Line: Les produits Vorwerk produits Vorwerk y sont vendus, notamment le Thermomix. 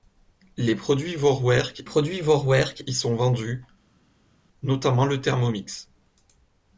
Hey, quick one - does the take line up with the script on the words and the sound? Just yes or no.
yes